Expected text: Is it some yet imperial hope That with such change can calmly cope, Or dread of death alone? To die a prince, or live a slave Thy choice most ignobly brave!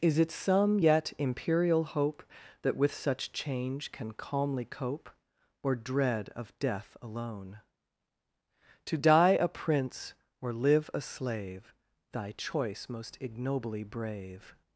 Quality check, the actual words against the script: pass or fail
pass